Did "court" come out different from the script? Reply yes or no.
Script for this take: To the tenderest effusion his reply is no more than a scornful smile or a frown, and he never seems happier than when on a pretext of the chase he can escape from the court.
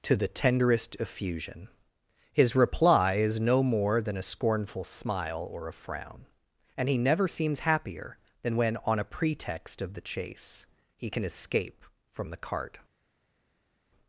yes